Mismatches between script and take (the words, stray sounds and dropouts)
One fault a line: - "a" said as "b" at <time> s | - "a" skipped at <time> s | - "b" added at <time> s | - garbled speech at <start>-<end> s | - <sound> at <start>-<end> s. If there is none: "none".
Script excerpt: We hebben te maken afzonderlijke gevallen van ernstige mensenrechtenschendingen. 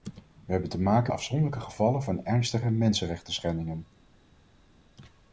none